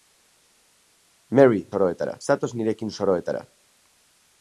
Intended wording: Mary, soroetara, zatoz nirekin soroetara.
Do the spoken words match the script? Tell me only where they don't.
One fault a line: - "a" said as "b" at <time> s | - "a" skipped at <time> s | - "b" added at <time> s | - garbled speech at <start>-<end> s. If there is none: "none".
none